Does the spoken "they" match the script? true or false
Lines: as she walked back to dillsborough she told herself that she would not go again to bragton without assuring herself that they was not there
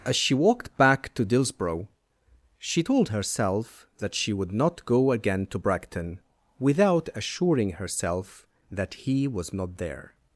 false